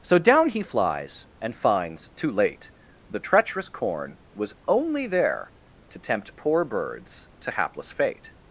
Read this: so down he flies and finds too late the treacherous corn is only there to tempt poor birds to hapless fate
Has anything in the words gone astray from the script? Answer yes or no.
yes